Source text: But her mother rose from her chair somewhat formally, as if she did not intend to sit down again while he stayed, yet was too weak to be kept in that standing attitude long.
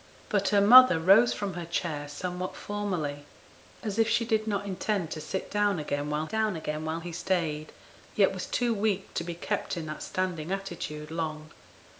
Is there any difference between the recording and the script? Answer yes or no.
yes